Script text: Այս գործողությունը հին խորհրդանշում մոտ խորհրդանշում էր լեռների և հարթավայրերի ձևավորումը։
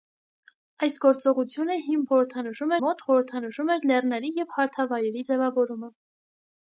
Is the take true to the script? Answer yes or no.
yes